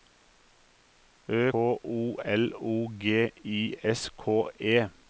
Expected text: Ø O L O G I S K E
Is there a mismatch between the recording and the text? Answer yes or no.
no